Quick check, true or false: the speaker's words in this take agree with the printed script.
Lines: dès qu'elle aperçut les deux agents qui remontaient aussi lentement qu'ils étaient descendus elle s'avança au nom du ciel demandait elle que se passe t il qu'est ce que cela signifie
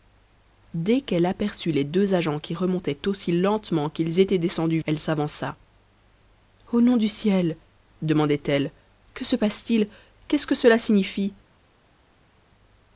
true